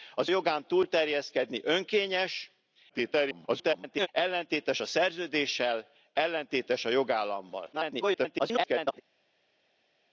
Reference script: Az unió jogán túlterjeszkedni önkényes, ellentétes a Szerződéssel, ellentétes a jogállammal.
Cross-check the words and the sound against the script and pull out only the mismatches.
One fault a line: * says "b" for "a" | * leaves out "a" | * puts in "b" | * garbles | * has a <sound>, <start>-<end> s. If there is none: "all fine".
* leaves out "unió"
* garbles
* garbles